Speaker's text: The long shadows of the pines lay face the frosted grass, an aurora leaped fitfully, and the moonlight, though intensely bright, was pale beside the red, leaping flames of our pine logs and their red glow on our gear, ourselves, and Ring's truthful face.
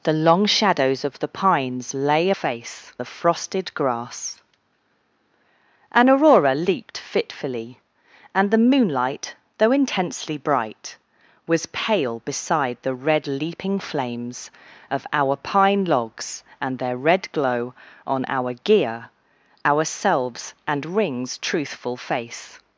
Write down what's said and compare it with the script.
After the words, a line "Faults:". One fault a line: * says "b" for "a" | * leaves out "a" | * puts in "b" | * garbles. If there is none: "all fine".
The long shadows of the pines lay face the frosted grass, an aurora leaped fitfully, and the moonlight, though intensely bright, was pale beside the red, leaping flames of our pine logs and their red glow on our gear, ourselves, and Ring's truthful face.
Faults:
all fine